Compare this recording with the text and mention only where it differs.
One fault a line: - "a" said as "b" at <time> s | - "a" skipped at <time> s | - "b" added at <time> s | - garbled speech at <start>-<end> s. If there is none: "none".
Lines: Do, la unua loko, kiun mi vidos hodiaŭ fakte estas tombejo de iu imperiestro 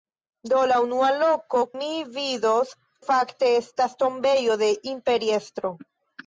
- "kiun" skipped at 1.6 s
- "hodiaŭ" skipped at 2.7 s
- "iu" skipped at 4.7 s